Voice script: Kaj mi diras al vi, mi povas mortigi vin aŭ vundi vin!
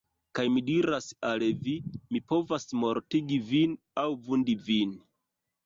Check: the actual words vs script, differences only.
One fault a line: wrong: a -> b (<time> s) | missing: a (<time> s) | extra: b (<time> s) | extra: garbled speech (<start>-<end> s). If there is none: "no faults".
no faults